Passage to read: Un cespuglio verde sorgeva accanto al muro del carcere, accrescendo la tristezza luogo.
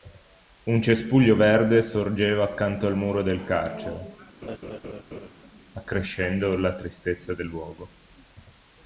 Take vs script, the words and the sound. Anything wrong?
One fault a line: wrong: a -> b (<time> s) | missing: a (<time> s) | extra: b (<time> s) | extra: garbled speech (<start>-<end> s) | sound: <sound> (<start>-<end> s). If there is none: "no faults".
sound: laugh (4.4-5.3 s)
extra: del (7.3 s)